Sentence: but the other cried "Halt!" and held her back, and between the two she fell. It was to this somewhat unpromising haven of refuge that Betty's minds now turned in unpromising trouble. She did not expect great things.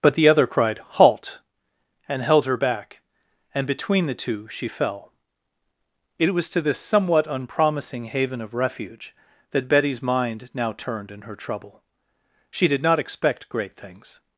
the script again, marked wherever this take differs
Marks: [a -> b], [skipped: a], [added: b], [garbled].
but the other cried "Halt!" and held her back, and between the two she fell. It was to this somewhat unpromising haven of refuge that Betty's [minds -> mind] now turned in [unpromising -> her] trouble. She did not expect great things.